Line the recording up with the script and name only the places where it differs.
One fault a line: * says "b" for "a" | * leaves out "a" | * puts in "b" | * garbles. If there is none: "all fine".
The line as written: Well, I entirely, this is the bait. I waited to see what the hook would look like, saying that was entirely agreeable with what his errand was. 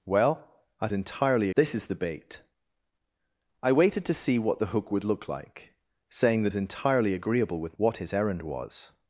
all fine